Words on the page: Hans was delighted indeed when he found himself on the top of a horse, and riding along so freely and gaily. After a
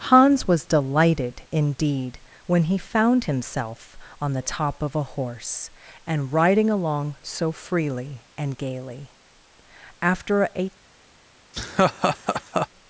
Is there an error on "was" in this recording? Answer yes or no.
no